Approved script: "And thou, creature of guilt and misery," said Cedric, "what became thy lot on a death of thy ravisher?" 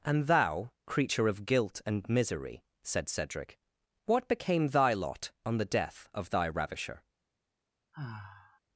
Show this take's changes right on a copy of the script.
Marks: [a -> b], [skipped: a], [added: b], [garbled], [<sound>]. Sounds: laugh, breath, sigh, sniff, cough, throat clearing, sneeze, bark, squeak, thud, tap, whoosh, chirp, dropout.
"And thou, creature of guilt and misery," said Cedric, "what became thy lot on [a -> the] death of thy ravisher?" [sigh]